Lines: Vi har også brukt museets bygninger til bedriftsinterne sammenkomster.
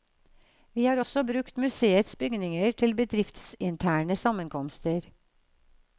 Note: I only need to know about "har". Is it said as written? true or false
true